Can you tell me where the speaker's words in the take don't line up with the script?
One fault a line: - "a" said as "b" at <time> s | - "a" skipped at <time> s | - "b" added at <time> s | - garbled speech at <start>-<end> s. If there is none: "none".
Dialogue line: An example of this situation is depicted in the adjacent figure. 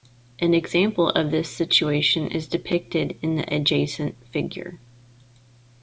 none